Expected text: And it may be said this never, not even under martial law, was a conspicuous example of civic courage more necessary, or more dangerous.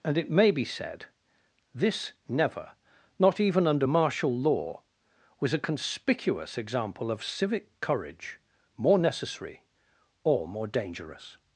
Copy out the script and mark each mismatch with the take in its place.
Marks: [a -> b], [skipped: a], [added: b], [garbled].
And it may be said this never, not even under martial law, was a conspicuous example of civic courage more necessary, or more dangerous.